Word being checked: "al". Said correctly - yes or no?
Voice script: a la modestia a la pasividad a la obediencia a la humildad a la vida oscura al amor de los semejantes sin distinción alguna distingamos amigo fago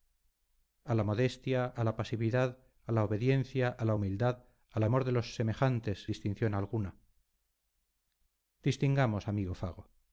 no